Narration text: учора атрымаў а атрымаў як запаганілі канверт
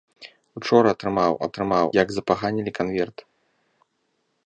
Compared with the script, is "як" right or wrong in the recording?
right